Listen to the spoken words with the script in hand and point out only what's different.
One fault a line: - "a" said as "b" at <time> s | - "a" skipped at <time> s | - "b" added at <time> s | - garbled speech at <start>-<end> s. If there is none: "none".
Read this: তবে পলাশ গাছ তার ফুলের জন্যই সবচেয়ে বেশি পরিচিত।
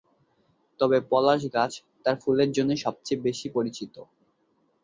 none